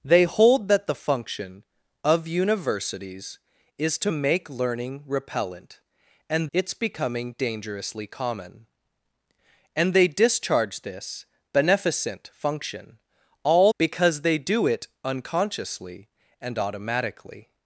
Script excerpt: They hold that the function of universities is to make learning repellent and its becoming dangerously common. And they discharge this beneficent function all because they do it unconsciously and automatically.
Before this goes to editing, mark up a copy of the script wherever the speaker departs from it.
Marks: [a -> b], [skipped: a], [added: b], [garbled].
They hold that the function of universities is to make learning repellent and its becoming dangerously common. And they discharge this beneficent function all because they do it unconsciously and automatically.